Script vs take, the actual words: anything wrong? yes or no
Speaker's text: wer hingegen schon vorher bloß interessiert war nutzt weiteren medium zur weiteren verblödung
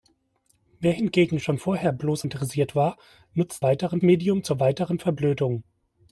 no